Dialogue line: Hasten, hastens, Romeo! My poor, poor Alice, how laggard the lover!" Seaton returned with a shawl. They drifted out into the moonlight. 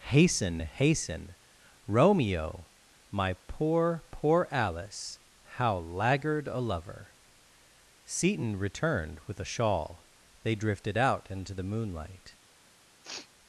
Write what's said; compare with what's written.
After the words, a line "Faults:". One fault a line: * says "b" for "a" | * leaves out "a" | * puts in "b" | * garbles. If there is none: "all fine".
Hasten, hasten, Romeo! My poor, poor Alice, how laggard a lover!" Seaton returned with a shawl. They drifted out into the moonlight.
Faults:
* says "hasten" for "hastens"
* says "a" for "the"